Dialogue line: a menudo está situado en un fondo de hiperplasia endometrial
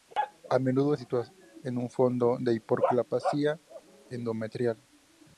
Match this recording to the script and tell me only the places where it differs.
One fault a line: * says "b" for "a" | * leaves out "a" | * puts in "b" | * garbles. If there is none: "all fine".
* leaves out "está"